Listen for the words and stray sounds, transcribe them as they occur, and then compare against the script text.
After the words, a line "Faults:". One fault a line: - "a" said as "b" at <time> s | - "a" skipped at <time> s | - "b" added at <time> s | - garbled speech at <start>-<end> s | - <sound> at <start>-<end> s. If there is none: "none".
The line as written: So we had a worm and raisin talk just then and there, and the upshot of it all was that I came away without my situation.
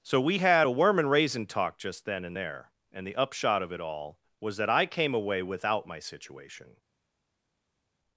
So we had a worm and raisin talk just then and there, and the upshot of it all was that I came away without my situation.
Faults:
none